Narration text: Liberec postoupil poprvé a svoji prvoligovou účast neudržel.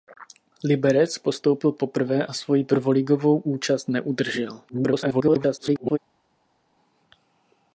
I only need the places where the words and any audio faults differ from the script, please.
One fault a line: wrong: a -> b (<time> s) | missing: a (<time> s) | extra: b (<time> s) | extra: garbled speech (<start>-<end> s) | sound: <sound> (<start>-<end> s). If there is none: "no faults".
extra: garbled speech (4.7-6.0 s)